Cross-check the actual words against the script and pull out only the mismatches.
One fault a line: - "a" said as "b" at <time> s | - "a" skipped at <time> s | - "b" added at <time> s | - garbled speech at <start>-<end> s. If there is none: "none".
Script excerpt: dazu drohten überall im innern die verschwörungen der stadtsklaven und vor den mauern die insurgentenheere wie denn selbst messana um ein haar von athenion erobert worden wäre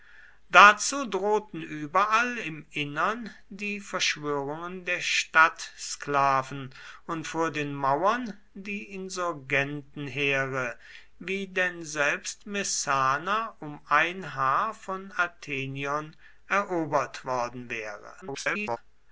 - garbled speech at 18.2-18.8 s